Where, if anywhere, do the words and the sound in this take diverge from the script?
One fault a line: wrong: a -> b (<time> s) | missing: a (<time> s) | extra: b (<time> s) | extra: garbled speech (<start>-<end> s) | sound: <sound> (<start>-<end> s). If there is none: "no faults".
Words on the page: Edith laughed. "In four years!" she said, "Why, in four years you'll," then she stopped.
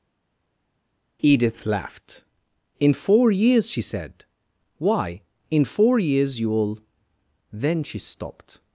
no faults